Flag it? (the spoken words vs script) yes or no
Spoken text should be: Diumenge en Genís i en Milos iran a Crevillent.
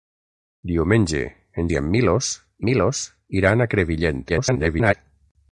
yes